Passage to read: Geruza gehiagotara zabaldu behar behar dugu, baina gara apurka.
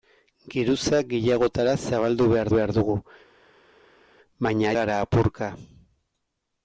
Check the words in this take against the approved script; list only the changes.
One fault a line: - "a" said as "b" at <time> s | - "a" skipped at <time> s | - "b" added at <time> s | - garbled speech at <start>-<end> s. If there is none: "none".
none